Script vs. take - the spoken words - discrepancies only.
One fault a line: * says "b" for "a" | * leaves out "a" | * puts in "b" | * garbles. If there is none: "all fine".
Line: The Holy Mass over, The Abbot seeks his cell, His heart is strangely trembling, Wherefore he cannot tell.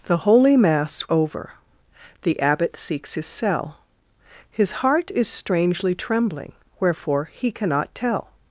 all fine